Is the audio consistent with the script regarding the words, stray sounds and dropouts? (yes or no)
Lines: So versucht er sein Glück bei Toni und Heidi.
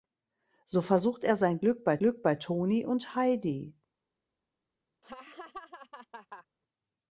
no